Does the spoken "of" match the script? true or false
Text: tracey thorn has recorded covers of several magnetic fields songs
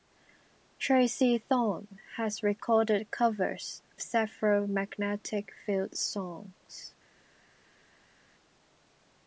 false